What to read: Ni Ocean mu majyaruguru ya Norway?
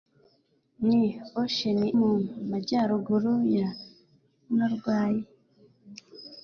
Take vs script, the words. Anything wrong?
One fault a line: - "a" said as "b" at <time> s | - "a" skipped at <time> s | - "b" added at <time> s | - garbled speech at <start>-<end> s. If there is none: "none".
none